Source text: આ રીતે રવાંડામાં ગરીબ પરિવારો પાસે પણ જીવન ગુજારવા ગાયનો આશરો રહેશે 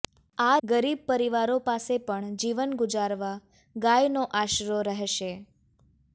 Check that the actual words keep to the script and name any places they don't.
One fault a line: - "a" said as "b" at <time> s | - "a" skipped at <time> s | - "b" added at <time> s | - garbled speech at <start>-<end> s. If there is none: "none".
- "રીતે રવાંડામાં" skipped at 0.5 s